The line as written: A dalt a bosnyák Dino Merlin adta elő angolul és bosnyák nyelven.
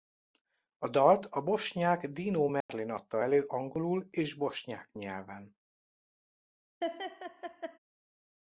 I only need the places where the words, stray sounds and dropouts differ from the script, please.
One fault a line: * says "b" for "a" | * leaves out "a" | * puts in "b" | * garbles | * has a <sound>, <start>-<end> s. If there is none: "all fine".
* has a dropout, 2.6-2.7 s
* has a laugh, 6.8-7.8 s